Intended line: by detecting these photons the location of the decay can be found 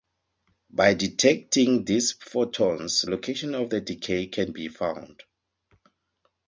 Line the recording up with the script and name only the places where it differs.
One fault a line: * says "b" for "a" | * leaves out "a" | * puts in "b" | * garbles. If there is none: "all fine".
* leaves out "the"